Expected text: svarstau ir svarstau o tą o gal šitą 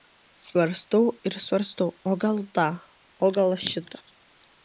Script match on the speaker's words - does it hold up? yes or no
no